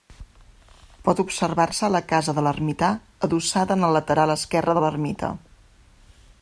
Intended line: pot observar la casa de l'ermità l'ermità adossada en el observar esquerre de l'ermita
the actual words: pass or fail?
fail